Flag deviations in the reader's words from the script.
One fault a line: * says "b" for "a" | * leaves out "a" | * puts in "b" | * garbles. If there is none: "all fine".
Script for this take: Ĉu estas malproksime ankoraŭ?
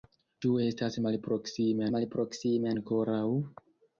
* puts in "malproksime"